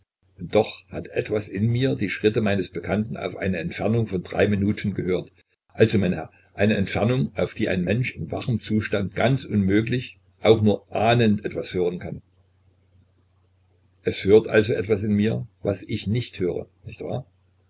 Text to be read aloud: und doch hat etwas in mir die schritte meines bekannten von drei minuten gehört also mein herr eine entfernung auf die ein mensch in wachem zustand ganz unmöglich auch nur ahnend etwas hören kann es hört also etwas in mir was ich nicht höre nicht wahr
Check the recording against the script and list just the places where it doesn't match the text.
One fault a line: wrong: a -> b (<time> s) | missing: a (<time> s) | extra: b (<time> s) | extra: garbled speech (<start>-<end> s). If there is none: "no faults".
extra: auf eine entfernung (3.2 s)